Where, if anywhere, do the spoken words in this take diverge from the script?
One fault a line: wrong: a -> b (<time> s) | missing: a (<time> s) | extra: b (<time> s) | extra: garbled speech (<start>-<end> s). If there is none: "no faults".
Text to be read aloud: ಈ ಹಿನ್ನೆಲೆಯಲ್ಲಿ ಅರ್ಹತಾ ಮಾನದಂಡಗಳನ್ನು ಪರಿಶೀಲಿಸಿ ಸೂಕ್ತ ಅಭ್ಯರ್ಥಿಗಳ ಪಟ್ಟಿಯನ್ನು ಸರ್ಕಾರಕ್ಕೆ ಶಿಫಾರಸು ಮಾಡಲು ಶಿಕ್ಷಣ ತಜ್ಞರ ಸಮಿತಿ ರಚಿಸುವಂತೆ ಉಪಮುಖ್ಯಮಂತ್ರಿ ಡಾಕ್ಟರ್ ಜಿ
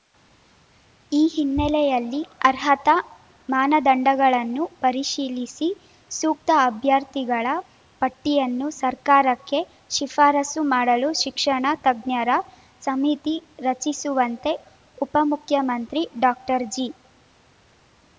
no faults